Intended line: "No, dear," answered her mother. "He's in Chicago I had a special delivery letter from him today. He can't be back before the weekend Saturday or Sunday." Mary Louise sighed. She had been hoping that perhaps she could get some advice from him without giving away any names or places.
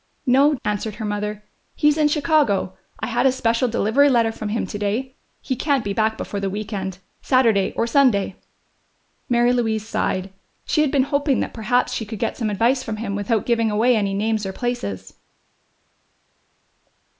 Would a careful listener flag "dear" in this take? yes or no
yes